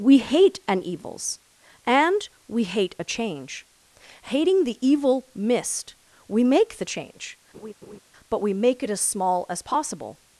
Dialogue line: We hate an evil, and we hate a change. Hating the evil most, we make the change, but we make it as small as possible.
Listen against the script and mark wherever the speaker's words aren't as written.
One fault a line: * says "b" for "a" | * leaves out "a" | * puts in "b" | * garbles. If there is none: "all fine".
* says "evils" for "evil"
* says "mist" for "most"